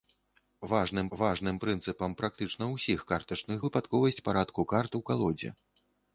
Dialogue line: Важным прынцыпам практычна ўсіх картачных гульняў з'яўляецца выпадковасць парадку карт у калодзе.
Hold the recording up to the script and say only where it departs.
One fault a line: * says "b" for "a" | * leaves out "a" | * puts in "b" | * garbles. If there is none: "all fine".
* puts in "важным"
* leaves out "гульняў з'яўляецца"